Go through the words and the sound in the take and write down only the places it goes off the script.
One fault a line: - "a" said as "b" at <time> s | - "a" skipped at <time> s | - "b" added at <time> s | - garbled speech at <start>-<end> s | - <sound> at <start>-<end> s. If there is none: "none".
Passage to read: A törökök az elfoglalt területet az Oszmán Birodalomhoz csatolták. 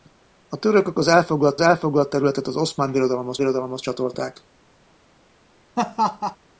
- "elfoglalt" added at 1.6 s
- "Birodalomhoz" added at 3.4 s
- laugh at 5.8-6.4 s